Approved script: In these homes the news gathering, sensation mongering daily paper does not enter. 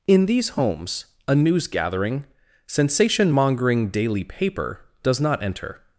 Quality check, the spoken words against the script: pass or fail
fail